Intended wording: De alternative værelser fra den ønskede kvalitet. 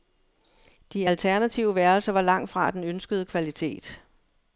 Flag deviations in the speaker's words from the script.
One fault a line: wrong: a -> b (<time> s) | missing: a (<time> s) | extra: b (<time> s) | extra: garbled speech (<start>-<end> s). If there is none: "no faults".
extra: var langt (2.1 s)